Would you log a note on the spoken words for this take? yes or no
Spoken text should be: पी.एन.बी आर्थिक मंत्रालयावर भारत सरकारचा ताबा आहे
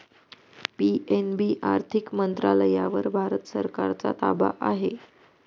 no